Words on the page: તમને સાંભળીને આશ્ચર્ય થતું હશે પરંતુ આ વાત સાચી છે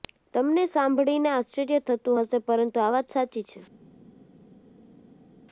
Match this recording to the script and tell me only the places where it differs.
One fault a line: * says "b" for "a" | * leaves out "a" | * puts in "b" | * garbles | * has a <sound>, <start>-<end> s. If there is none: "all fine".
all fine